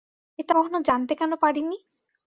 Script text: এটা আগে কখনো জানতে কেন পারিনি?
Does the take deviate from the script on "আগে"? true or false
true